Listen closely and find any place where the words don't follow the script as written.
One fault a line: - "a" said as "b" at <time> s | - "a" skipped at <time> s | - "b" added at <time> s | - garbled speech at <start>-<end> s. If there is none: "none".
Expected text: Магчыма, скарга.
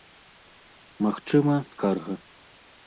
none